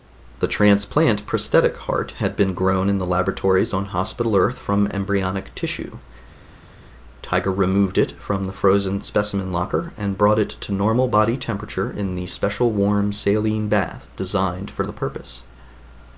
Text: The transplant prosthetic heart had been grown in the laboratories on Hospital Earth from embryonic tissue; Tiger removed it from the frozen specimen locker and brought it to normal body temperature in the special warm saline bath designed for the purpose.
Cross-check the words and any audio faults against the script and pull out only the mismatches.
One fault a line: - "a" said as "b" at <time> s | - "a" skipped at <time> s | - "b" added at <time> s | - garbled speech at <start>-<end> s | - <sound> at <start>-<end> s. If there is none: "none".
none